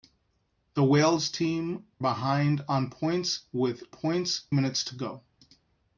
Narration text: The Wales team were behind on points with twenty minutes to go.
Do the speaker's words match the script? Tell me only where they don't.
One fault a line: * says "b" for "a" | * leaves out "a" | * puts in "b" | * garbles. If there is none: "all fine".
* leaves out "were"
* says "points" for "twenty"